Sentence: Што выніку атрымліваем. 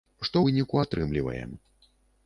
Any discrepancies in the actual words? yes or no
no